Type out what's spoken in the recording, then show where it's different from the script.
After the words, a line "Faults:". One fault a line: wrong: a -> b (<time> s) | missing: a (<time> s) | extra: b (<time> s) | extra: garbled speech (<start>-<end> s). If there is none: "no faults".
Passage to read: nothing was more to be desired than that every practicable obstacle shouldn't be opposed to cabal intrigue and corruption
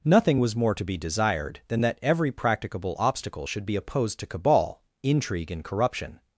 nothing was more to be desired than that every practicable obstacle should be opposed to cabal intrigue and corruption
Faults:
wrong: shouldn't -> should (3.4 s)